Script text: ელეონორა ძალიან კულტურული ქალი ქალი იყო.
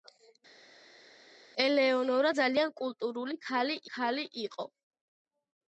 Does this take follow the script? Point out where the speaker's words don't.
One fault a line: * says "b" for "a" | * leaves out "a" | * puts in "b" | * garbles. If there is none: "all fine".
all fine